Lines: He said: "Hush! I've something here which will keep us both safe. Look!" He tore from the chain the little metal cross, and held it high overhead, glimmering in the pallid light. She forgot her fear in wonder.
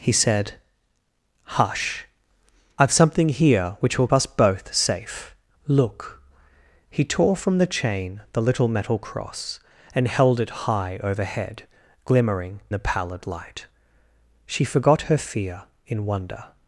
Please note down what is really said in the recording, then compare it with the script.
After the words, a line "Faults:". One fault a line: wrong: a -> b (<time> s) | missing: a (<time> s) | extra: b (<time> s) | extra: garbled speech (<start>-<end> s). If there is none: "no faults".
He said: "Hush! I've something here which will us both safe. Look!" He tore from the chain the little metal cross, and held it high overhead, glimmering the pallid light. She forgot her fear in wonder.
Faults:
missing: keep (4.1 s)
missing: in (12.6 s)